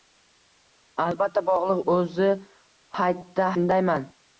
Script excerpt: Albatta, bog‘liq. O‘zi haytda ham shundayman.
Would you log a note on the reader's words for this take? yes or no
yes